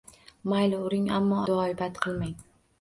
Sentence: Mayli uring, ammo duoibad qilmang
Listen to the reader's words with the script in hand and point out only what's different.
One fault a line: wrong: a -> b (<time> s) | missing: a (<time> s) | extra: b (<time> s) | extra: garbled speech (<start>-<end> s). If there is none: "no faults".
no faults